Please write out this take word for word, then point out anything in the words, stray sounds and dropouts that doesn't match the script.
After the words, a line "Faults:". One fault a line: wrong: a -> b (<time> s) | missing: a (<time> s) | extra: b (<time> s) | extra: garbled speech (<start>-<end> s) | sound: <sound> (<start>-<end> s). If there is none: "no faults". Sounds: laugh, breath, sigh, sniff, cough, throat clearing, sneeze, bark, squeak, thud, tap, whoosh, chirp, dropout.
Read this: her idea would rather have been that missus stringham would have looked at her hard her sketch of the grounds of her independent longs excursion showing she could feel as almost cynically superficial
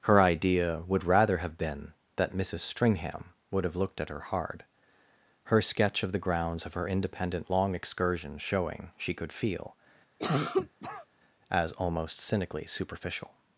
her idea would rather have been that missus stringham would have looked at her hard her sketch of the grounds of her independent long excursion showing she could feel as almost cynically superficial
Faults:
wrong: longs -> long (7.5 s)
sound: cough (10.2-11.1 s)